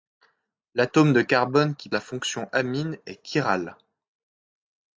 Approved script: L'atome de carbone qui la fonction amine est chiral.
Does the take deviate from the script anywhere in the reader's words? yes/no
no